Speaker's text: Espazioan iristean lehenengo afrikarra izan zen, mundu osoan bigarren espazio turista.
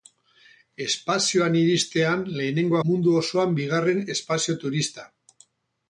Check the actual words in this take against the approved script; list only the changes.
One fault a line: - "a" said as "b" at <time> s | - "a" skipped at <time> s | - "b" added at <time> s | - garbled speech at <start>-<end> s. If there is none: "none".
- "afrikarra izan zen" skipped at 2.8 s